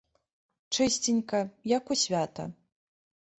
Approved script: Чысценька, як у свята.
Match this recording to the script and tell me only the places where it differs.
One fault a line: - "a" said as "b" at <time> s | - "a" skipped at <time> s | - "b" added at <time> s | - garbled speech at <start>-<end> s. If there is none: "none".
none